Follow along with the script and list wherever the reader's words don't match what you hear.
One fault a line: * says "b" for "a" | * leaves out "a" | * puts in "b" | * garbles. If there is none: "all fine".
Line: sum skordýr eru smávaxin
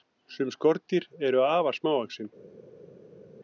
* puts in "afar"